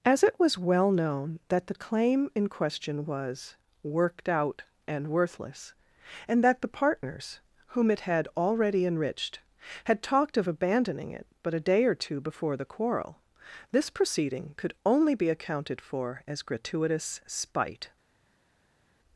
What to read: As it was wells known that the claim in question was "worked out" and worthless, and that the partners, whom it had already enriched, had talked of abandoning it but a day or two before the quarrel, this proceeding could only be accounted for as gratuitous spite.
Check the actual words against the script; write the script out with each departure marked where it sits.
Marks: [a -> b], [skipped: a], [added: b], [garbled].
As it was [wells -> well] known that the claim in question was "worked out" and worthless, and that the partners, whom it had already enriched, had talked of abandoning it but a day or two before the quarrel, this proceeding could only be accounted for as gratuitous spite.